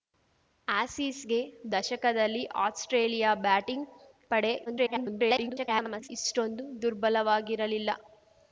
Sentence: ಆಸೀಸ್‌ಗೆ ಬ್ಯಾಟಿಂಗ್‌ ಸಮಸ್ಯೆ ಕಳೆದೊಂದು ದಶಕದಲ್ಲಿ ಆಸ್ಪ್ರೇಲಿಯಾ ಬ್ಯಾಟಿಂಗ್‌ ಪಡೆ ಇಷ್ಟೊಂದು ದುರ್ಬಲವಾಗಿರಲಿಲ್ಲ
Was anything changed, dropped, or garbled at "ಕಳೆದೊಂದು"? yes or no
yes